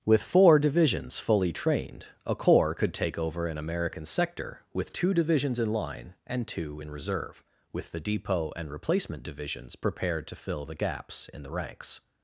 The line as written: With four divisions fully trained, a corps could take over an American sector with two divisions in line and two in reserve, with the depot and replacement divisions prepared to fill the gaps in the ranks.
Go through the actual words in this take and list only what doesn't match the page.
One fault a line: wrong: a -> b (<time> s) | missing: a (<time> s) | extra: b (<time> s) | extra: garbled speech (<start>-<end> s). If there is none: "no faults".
no faults